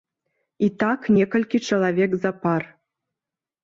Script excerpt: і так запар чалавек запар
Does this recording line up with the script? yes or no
no